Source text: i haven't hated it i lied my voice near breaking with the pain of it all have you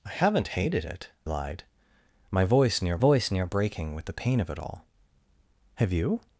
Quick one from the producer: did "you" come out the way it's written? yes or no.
yes